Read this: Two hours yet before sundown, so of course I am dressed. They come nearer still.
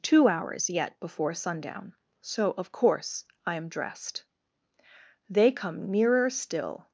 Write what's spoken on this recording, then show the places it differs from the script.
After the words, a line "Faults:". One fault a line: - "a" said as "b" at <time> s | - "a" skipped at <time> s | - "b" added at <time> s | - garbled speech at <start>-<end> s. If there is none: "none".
Two hours yet before sundown, so of course I am dressed. They come nearer still.
Faults:
none